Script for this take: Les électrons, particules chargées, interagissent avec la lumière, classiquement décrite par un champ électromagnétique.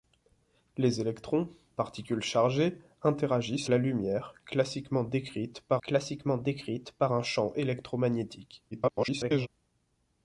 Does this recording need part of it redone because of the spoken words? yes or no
yes